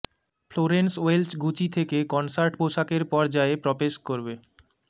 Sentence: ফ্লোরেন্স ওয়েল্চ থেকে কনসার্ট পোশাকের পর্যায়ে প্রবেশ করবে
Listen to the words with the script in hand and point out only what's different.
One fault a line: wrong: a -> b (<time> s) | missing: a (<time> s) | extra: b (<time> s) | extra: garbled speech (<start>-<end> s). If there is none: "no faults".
extra: গুচি (1.4 s)